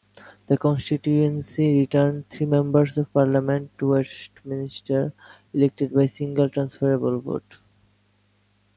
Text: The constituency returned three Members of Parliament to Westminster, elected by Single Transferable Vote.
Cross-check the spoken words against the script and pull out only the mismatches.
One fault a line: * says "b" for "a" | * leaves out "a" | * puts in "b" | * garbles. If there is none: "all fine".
all fine